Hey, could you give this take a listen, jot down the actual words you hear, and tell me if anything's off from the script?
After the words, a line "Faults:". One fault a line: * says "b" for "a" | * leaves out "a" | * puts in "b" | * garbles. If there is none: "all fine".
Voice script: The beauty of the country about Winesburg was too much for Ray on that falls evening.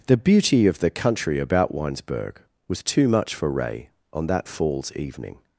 The beauty of the country about Winesburg was too much for Ray on that falls evening.
Faults:
all fine